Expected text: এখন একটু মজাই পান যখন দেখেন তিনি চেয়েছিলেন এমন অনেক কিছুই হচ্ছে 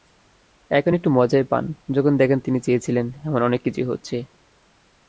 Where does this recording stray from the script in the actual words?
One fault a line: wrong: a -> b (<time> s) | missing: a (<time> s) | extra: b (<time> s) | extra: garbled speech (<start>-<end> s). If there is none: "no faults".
no faults